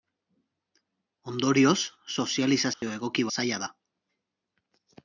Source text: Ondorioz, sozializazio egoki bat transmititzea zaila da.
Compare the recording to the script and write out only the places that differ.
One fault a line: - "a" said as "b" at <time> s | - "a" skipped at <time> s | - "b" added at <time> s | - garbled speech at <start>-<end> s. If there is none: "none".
- "bat transmititzea" skipped at 3.3 s